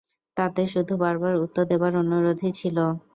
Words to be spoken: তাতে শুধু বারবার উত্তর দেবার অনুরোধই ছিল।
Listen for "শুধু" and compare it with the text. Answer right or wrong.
right